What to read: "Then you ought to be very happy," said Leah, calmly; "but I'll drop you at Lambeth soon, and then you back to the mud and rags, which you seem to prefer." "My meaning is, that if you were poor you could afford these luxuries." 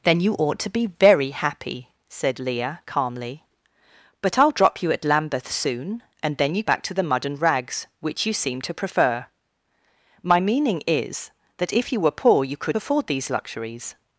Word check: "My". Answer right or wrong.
right